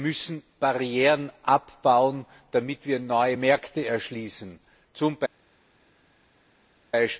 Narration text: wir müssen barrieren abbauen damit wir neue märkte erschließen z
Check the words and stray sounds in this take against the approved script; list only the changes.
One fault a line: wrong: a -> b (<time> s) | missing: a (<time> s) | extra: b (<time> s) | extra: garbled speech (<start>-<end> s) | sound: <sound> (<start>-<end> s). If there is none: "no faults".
no faults